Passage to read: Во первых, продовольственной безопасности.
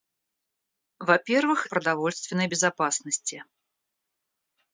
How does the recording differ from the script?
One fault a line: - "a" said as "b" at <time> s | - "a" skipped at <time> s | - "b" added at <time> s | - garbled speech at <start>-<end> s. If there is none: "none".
none